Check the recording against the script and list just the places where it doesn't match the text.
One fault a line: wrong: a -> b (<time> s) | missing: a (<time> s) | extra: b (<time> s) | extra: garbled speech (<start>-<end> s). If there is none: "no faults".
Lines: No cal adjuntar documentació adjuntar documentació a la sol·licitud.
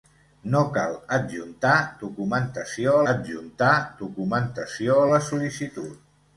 no faults